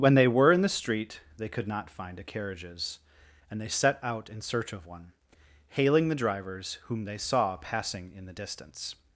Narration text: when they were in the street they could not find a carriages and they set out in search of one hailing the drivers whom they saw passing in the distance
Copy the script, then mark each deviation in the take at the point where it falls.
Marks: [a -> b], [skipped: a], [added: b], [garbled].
when they were in the street they could not find a carriages and they set out in search of one hailing the drivers whom they saw passing in the distance